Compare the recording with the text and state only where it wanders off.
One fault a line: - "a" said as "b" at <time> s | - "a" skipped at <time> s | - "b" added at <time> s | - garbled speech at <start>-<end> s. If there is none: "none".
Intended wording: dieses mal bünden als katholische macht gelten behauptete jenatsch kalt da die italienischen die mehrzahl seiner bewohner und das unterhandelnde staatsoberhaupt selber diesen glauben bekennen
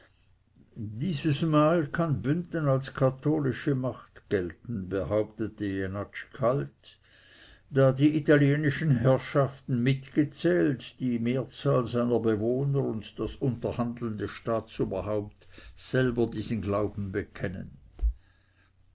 - "kann" added at 1.9 s
- "herrschaften mitgezählt" added at 9.0 s